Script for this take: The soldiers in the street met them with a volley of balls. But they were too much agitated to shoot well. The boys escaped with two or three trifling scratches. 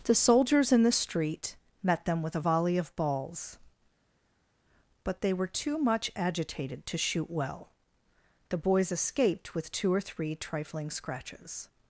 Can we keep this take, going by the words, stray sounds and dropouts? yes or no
yes